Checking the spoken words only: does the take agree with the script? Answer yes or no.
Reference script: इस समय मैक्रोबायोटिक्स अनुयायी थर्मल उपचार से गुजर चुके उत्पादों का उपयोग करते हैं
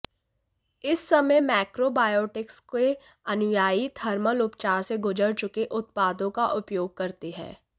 no